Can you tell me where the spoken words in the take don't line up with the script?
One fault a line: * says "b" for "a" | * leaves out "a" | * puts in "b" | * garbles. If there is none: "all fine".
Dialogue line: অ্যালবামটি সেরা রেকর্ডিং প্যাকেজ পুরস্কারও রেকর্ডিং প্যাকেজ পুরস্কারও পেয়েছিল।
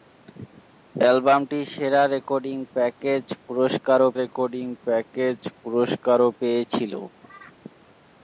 all fine